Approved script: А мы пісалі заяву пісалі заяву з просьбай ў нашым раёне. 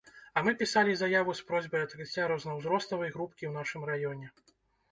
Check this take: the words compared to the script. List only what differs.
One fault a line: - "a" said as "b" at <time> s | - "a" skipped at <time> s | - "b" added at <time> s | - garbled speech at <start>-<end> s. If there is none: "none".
- "пісалі заяву з просьбай" said as "з просьбай адкрыцця рознаўзроставай групкі" at 1.4 s